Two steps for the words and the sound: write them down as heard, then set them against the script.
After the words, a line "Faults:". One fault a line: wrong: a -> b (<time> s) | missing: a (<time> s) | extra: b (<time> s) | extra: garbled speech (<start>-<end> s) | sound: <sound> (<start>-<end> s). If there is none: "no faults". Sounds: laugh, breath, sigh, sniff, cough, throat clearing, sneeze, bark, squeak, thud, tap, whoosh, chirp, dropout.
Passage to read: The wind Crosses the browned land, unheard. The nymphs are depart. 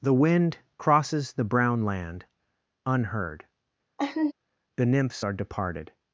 The wind Crosses the brown land, unheard. The nymphs are departed.
Faults:
wrong: browned -> brown (1.4 s)
sound: laugh (4.0-4.3 s)
wrong: depart -> departed (5.3 s)